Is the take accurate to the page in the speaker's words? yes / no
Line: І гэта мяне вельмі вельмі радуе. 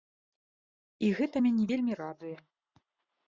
no